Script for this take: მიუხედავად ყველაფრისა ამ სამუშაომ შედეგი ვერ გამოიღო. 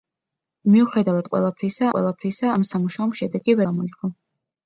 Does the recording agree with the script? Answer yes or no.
no